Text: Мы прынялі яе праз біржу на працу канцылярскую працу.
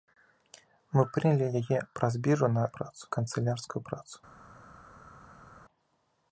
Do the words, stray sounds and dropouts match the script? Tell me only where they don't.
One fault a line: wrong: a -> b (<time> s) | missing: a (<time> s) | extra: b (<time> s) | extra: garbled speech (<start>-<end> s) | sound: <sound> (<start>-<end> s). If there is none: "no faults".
no faults